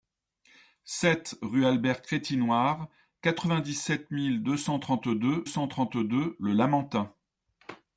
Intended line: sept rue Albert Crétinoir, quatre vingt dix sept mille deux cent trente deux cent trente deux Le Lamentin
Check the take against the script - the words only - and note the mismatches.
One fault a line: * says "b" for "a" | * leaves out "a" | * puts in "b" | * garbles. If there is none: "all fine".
all fine